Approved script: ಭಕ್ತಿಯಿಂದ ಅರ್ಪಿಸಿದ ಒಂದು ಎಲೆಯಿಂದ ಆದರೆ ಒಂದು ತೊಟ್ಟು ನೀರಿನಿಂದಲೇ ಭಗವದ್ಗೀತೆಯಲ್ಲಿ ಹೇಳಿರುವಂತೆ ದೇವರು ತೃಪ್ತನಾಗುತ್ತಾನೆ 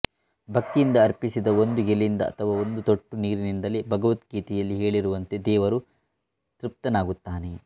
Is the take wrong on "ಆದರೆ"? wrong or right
wrong